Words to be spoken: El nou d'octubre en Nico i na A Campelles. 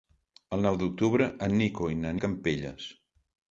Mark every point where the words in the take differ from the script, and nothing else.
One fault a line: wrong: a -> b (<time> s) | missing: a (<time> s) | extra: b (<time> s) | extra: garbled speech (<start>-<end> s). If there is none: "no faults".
no faults